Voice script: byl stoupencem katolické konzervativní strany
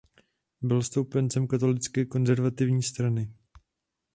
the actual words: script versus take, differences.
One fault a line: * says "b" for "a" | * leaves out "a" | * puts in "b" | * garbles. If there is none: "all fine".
all fine